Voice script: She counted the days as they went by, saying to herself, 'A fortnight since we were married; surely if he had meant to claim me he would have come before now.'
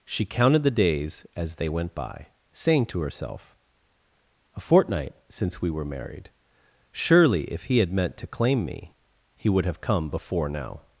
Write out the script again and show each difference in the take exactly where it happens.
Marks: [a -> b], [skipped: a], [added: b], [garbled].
She counted the days as they went by, saying to herself, 'A fortnight since we were married; surely if he had meant to claim me he would have come before now.'